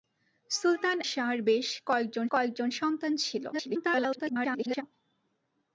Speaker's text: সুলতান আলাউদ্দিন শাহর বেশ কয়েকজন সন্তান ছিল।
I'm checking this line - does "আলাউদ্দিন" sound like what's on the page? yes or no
no